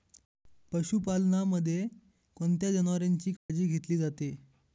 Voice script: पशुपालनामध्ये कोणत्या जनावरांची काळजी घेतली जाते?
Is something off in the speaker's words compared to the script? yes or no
no